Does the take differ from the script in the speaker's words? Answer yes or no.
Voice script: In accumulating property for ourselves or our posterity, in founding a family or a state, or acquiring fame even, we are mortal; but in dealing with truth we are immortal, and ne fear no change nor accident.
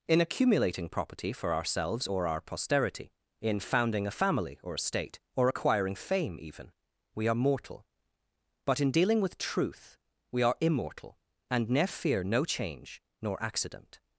no